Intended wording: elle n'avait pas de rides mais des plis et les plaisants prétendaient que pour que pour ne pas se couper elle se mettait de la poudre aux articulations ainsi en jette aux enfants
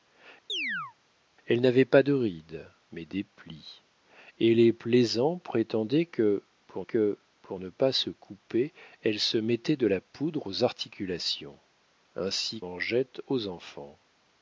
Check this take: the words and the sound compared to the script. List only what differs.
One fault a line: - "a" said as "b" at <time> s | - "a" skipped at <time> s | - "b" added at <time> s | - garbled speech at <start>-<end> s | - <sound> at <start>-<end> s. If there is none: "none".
- chirp at 0.5-0.9 s